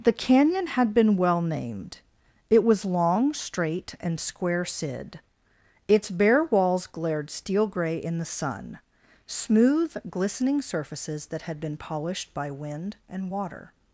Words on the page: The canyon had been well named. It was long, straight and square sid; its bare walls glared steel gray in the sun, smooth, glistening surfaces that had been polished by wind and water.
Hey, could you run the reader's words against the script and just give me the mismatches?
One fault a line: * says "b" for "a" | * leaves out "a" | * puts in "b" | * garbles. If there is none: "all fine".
all fine